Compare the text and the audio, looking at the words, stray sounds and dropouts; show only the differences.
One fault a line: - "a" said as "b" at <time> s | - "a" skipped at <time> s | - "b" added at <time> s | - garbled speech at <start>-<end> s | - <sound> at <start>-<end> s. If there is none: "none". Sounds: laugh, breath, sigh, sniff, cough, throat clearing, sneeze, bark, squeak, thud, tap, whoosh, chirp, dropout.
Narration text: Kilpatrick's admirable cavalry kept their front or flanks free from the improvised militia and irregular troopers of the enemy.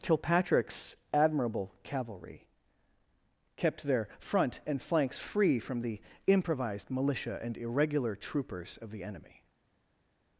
- "or" said as "and" at 4.7 s